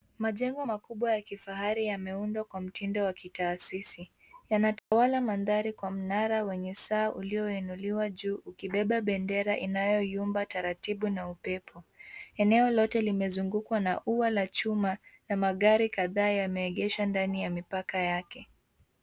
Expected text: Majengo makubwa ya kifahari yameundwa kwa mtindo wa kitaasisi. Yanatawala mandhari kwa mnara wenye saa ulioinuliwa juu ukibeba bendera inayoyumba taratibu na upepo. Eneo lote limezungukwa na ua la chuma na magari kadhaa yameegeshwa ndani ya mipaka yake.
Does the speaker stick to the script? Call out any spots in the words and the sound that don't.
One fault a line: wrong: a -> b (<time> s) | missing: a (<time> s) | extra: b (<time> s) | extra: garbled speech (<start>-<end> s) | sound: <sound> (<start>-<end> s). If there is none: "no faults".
sound: dropout (4.8-4.9 s)